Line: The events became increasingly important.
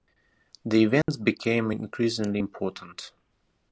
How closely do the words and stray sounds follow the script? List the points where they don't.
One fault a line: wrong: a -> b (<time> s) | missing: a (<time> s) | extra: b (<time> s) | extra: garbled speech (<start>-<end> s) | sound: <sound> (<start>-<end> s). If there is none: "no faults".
sound: dropout (1.0-1.1 s)